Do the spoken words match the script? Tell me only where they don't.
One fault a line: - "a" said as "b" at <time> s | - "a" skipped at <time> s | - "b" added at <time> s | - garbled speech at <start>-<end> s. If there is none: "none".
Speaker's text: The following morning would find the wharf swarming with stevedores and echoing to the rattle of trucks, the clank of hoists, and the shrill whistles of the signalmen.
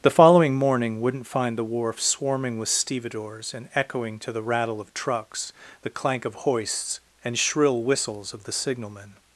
- "would" said as "wouldn't" at 1.0 s
- "the" skipped at 7.4 s